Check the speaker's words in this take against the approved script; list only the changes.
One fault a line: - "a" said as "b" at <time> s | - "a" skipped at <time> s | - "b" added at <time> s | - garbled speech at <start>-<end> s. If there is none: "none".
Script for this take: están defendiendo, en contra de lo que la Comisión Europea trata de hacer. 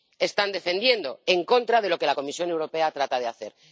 none